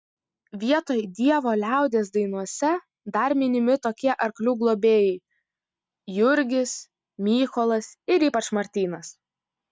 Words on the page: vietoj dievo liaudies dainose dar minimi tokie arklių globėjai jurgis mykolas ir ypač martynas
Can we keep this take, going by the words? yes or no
yes